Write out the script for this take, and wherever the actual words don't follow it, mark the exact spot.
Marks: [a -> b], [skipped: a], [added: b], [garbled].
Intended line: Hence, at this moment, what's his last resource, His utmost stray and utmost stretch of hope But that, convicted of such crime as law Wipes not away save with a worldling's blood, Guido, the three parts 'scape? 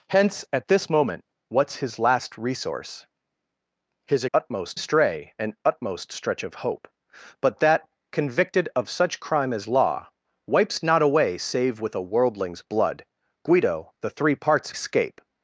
Hence, at this moment, what's his last resource, His utmost stray and utmost stretch of hope But that, convicted of such crime as law Wipes not away save with a worldling's blood, Guido, the three parts 'scape?